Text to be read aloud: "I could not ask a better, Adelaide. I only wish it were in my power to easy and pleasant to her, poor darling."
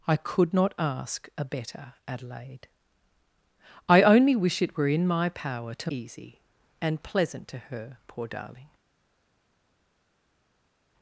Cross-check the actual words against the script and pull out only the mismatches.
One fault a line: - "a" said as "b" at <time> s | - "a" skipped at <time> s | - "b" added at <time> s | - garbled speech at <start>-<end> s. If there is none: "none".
none